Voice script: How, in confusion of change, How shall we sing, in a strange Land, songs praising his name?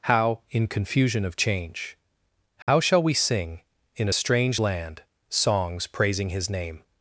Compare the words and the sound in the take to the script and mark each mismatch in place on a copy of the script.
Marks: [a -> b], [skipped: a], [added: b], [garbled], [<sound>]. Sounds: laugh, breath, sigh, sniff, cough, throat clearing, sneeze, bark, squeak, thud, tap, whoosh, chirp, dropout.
How, in confusion of change, How [dropout] shall we sing, in a strange Land, songs praising his name?